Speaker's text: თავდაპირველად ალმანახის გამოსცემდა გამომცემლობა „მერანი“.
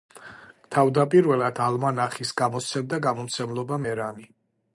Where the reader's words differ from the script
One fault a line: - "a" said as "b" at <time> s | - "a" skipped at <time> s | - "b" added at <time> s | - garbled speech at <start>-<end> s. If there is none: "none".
none